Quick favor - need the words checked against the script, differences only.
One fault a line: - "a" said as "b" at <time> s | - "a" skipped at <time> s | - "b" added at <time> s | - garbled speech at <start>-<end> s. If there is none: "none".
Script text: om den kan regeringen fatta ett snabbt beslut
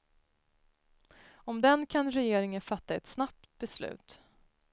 none